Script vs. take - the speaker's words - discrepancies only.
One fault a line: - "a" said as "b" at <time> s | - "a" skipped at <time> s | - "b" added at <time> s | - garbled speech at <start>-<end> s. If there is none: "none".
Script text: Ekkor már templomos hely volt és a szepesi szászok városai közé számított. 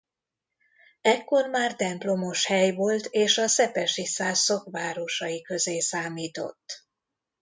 none